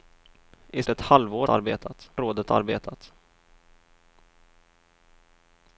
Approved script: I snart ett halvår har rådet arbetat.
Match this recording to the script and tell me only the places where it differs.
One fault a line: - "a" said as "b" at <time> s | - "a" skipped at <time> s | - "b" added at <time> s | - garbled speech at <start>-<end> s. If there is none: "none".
- "snart" skipped at 0.8 s
- "har" said as "arbetat" at 1.5 s